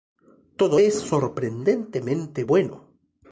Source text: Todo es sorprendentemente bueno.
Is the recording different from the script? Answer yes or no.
no